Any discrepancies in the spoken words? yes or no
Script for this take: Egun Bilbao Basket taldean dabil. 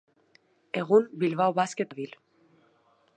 yes